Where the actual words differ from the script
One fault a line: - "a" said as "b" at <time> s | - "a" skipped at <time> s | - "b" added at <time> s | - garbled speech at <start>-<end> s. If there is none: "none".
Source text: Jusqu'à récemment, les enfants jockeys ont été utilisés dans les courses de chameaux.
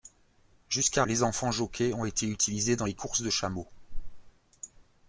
- "récemment" skipped at 1.0 s